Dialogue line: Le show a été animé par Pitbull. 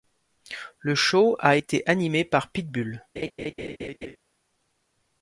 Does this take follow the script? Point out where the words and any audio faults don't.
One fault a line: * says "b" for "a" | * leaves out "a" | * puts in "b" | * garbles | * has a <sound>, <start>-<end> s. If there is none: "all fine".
* has a laugh, 3.2-4.2 s